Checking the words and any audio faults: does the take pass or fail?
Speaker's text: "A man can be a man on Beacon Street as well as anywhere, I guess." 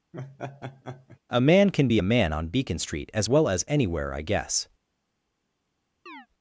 fail